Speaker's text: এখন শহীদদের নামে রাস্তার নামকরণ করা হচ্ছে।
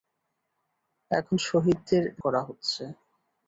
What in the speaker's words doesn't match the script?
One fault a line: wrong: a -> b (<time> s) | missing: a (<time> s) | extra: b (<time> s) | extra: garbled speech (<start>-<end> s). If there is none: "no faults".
missing: নামে রাস্তার নামকরণ (2.0 s)